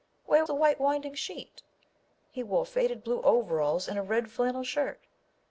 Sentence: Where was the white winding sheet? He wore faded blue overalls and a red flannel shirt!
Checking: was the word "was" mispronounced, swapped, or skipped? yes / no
yes